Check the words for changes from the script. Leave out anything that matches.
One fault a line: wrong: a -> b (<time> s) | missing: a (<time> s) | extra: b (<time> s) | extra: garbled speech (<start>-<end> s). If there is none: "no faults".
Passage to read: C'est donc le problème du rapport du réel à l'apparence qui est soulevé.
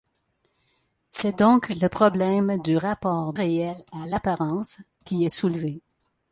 missing: du (3.3 s)